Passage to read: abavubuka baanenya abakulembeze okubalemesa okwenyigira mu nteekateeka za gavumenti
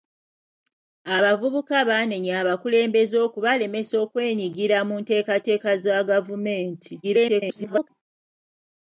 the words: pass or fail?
fail